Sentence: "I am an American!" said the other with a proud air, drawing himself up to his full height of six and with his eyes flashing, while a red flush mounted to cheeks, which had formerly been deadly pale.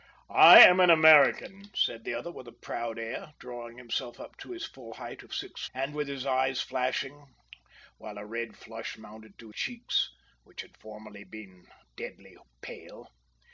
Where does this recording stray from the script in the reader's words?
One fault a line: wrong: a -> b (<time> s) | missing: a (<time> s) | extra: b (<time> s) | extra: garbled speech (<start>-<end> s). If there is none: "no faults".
no faults